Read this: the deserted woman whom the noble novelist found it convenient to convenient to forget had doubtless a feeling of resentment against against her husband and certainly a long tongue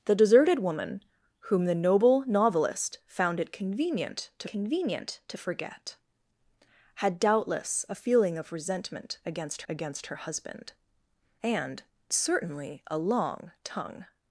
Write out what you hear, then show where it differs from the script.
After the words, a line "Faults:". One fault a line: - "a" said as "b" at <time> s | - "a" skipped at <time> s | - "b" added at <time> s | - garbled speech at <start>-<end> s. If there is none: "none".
the deserted woman whom the noble novelist found it convenient to convenient to forget had doubtless a feeling of resentment against against her husband and certainly a long tongue
Faults:
none